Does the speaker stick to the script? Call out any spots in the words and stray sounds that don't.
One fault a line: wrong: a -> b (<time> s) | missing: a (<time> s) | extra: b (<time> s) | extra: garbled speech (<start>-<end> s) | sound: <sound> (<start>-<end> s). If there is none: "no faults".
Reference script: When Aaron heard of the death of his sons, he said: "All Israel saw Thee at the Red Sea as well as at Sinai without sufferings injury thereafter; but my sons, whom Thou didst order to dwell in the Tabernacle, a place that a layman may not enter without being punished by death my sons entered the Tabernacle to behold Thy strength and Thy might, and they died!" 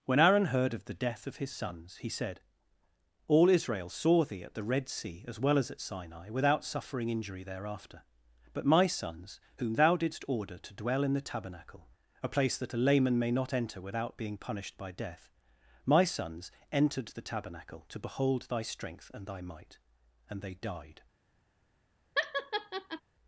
wrong: sufferings -> suffering (6.7 s)
sound: laugh (22.2-23.0 s)